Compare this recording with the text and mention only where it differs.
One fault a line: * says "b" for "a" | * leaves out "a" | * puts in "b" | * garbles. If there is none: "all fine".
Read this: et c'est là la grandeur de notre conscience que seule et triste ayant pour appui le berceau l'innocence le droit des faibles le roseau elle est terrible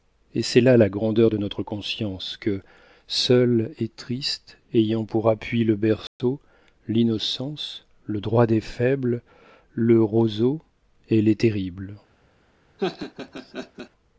all fine